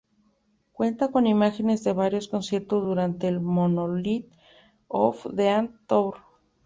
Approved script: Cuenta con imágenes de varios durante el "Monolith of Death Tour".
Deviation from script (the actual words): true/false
true